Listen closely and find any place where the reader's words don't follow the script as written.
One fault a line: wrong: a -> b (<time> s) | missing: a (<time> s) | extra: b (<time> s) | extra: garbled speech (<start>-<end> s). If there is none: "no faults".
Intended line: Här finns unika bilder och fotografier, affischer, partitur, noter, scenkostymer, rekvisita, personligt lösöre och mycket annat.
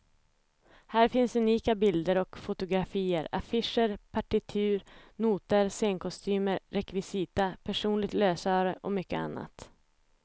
no faults